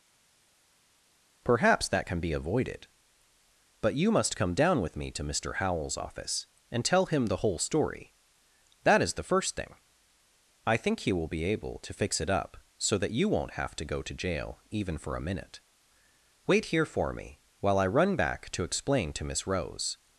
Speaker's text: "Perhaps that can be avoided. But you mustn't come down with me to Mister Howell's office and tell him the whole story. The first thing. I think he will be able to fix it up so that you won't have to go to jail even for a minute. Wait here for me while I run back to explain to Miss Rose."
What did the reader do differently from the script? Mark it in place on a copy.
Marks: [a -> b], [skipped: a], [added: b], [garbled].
"Perhaps that can be avoided. But you [mustn't -> must] come down with me to Mister Howell's office and tell him the whole story. [added: That is] The first thing. I think he will be able to fix it up so that you won't have to go to jail even for a minute. Wait here for me while I run back to explain to Miss Rose."